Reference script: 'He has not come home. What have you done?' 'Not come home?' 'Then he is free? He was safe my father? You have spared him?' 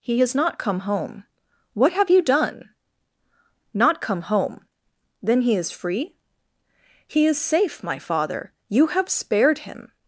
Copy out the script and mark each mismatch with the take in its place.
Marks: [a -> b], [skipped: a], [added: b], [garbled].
'He has not come home. What have you done?' 'Not come home?' 'Then he is free? He [was -> is] safe my father? You have spared him?'